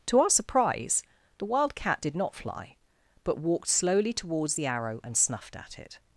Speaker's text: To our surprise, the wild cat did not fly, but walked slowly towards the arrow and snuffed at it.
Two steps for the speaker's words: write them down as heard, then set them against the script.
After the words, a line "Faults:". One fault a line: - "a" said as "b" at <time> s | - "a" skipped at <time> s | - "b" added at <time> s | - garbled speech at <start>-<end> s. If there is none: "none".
To our surprise, the wild cat did not fly, but walked slowly towards the arrow and snuffed at it.
Faults:
none